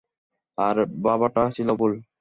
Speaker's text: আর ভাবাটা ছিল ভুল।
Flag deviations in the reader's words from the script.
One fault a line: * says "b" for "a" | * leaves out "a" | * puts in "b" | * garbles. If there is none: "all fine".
all fine